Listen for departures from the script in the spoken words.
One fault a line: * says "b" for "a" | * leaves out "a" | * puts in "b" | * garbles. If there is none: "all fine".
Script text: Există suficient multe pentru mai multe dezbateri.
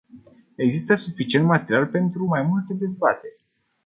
* says "material" for "multe"